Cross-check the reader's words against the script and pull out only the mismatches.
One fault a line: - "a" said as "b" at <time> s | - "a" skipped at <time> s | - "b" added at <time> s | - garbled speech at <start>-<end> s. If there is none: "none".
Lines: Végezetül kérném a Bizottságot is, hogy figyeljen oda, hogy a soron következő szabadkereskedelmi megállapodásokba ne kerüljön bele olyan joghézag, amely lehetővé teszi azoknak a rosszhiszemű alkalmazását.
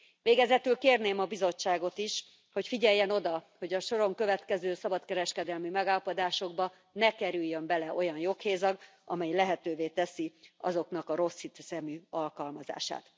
none